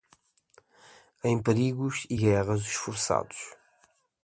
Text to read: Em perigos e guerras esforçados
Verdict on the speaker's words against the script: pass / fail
pass